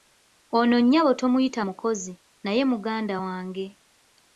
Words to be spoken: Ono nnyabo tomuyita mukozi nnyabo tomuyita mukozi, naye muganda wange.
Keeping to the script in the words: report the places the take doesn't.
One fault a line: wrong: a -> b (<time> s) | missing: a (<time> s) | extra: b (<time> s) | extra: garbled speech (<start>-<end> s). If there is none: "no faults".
missing: nnyabo tomuyita mukozi (2.1 s)